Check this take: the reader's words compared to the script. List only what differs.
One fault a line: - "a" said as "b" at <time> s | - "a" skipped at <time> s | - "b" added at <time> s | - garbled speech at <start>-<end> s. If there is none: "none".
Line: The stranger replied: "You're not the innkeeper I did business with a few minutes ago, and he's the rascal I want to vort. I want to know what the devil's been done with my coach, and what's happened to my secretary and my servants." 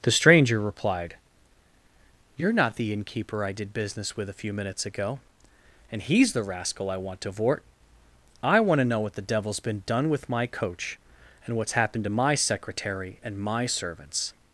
none